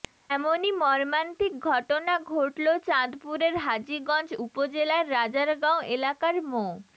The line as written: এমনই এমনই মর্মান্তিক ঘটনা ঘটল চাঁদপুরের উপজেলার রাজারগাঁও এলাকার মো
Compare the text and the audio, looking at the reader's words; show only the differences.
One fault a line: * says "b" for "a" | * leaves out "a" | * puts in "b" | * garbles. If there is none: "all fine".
* leaves out "এমনই"
* puts in "হাজীগঞ্জ"